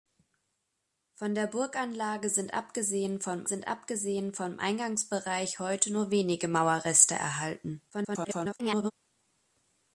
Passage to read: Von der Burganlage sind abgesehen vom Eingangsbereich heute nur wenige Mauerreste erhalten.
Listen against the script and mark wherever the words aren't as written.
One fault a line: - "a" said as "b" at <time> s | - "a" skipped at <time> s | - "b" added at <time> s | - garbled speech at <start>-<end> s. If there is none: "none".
- "sind abgesehen vom" added at 3.4 s
- garbled speech at 7.9-8.9 s